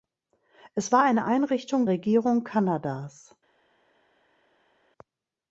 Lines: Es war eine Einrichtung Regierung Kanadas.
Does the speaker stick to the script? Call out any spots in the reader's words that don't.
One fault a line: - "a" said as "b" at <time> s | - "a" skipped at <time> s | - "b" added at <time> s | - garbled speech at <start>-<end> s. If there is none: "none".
none